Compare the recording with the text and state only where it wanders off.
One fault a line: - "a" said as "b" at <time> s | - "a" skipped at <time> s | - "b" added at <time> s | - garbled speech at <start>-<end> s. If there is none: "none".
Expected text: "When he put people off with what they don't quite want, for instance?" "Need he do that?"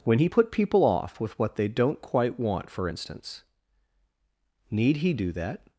none